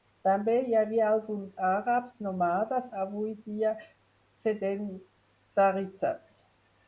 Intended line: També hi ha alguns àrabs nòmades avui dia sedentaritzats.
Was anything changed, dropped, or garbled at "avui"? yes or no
no